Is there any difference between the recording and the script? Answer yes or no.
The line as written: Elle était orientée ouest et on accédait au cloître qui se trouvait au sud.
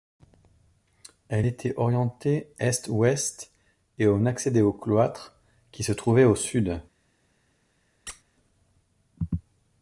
yes